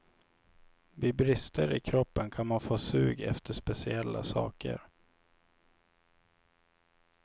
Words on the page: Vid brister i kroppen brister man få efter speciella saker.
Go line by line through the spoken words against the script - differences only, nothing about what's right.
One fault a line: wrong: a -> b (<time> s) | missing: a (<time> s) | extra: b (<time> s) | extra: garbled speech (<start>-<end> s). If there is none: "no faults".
wrong: brister -> kan (2.3 s)
extra: sug (2.8 s)